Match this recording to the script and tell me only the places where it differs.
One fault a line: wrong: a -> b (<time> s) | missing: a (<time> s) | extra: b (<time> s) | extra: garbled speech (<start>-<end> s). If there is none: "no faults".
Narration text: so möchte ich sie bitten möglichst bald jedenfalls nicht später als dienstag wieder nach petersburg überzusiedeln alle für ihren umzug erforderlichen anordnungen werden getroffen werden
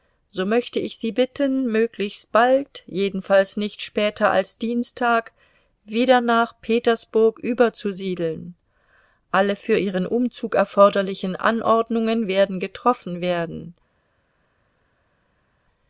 no faults